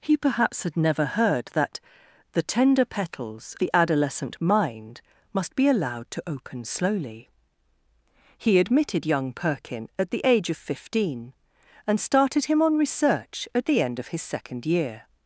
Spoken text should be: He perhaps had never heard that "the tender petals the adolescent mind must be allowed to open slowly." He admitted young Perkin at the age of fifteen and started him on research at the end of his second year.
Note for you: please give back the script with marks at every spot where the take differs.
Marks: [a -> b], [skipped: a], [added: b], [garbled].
He perhaps had never heard that "the tender petals the adolescent mind must be allowed to open slowly." He admitted young Perkin at the age of fifteen and started him on research at the end of his second year.